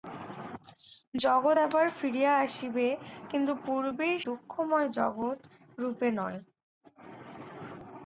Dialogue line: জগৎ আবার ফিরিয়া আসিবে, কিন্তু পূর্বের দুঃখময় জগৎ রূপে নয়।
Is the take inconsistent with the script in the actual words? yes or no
no